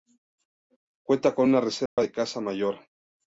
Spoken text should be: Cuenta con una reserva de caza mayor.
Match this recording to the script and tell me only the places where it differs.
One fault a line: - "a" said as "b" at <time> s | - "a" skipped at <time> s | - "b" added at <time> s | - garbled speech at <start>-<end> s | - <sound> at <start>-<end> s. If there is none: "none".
- dropout at 1.9-2.0 s